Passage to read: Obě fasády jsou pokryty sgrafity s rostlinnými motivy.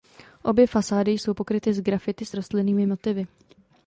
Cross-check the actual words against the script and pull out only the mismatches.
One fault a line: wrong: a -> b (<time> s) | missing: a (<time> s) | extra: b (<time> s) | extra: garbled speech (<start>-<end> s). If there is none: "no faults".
no faults